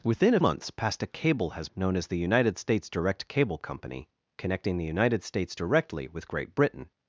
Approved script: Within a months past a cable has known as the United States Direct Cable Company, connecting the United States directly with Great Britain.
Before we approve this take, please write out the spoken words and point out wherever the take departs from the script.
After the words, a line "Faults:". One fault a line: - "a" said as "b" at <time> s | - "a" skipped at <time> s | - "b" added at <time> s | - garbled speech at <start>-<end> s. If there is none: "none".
Within a months past a cable has known as the United States Direct Cable Company, connecting the United States directly with Great Britain.
Faults:
none